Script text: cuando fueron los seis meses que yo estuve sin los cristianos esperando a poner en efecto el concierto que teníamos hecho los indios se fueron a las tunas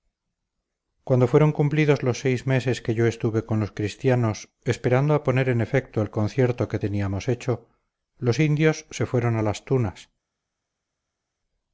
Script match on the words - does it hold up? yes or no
no